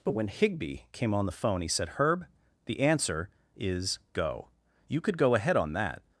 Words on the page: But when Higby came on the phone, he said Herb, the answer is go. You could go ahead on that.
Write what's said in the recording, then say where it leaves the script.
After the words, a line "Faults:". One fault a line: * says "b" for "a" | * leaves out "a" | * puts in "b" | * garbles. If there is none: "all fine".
But when Higby came on the phone, he said Herb, the answer is go. You could go ahead on that.
Faults:
all fine